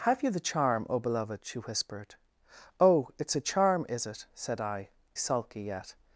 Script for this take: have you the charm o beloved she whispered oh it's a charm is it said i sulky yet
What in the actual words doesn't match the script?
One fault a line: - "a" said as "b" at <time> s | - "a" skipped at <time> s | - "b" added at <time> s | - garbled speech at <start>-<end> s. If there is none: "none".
none